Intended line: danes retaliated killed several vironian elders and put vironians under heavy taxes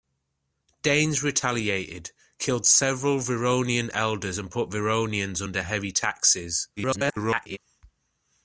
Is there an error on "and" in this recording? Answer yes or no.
no